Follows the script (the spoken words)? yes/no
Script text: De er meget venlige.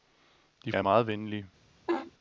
yes